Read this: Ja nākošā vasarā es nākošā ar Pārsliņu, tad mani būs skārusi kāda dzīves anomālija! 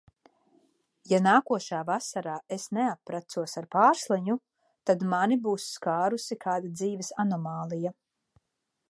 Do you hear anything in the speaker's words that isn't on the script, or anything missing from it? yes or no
yes